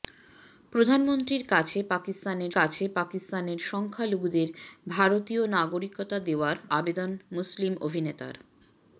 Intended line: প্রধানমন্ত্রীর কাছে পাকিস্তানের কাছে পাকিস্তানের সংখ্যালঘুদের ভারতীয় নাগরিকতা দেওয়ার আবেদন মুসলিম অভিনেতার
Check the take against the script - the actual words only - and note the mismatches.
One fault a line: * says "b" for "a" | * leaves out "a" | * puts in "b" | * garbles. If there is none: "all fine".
all fine